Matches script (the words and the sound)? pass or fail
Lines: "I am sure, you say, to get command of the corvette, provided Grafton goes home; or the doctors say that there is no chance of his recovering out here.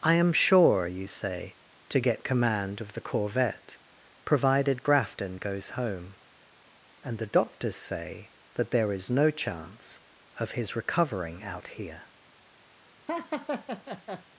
fail